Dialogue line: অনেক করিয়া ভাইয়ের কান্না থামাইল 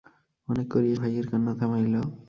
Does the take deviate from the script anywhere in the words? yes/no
no